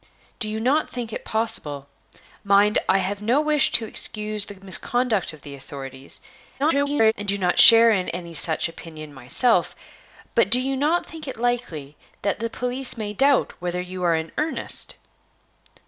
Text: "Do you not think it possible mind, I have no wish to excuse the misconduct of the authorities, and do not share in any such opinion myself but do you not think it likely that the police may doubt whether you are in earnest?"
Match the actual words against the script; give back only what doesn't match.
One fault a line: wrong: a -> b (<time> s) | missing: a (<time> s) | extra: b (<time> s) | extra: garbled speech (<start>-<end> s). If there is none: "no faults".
extra: garbled speech (6.6-7.1 s)